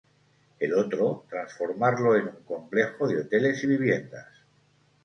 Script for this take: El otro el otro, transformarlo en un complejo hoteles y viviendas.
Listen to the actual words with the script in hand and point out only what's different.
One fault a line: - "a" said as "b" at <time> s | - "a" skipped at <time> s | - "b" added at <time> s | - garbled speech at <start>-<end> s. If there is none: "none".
- "el otro" skipped at 1.2 s
- "de" added at 3.1 s